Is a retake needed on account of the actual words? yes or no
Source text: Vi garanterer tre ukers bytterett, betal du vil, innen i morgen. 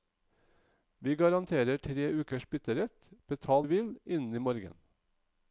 no